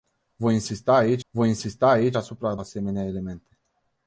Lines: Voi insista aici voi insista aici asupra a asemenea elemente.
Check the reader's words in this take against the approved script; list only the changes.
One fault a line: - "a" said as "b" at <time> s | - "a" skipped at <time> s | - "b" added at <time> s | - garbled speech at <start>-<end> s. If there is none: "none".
none